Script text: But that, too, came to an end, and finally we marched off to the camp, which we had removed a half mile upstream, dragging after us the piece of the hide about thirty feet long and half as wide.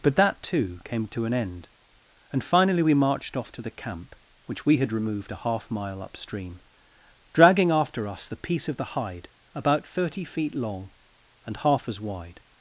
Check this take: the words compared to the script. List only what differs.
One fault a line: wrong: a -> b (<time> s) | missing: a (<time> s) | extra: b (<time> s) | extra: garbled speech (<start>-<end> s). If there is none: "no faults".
no faults